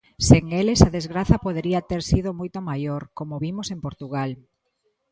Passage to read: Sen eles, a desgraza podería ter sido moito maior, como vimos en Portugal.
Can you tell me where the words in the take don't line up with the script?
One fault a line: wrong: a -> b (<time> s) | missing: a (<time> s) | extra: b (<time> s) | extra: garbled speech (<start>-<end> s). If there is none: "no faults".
no faults